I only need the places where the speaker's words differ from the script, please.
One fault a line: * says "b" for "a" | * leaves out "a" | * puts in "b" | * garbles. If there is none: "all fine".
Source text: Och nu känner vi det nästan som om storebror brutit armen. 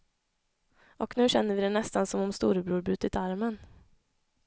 all fine